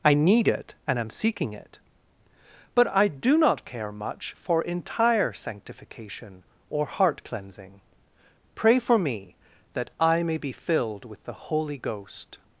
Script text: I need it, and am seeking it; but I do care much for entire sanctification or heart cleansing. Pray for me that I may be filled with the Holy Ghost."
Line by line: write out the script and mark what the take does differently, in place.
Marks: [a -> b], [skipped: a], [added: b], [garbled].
I need it, and am seeking it; but I do [added: not] care much for entire sanctification or heart cleansing. Pray for me that I may be filled with the Holy Ghost."